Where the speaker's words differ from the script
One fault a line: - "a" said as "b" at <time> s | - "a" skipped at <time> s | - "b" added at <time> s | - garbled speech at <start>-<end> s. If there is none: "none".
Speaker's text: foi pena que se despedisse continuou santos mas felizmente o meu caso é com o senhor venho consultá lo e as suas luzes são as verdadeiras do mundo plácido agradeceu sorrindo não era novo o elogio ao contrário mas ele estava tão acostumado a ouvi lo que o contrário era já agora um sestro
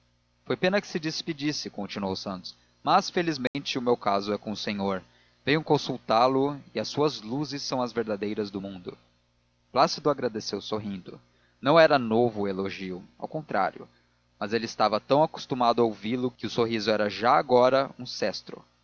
- "contrário" said as "sorriso" at 16.5 s